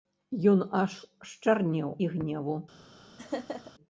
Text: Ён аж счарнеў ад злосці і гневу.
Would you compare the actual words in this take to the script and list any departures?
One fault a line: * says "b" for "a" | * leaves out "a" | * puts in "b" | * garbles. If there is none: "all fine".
* leaves out "ад злосці"